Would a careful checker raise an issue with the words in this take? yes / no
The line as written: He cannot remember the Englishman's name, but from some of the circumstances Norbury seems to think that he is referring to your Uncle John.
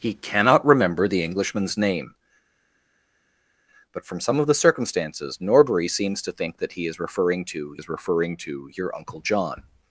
yes